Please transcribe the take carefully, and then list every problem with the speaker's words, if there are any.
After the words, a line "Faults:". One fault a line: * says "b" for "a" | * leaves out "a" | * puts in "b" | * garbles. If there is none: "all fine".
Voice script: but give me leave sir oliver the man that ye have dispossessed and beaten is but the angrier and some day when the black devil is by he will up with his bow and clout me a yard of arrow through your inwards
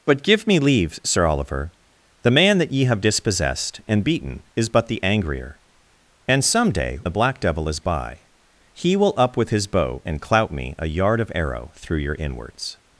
but give me leave sir oliver the man that ye have dispossessed and beaten is but the angrier and some day the black devil is by he will up with his bow and clout me a yard of arrow through your inwards
Faults:
* leaves out "when"